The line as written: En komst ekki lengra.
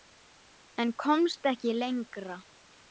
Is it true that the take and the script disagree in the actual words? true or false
false